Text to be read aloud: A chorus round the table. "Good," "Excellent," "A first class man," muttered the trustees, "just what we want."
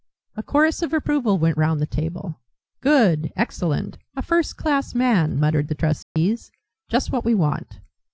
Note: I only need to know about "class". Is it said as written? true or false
true